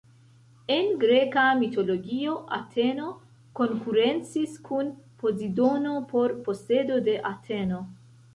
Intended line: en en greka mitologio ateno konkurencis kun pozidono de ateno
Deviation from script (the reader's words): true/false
true